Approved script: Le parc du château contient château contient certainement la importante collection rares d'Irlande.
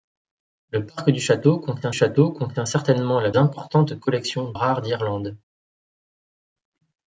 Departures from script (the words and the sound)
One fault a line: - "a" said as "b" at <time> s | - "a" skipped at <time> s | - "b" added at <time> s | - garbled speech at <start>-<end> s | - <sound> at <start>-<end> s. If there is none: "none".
none